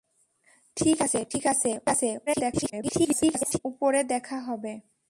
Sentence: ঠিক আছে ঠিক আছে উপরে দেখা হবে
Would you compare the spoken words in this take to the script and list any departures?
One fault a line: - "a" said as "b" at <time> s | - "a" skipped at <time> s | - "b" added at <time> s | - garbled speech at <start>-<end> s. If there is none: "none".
- garbled speech at 2.3-3.6 s